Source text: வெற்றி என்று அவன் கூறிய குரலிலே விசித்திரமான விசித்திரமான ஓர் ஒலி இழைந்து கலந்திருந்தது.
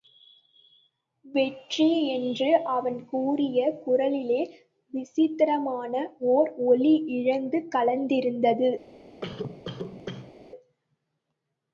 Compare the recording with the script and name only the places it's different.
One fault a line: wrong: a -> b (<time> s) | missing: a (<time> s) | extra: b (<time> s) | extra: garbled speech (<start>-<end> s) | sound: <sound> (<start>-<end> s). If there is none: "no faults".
missing: விசித்திரமான (5.9 s)
sound: cough (9.2-10.3 s)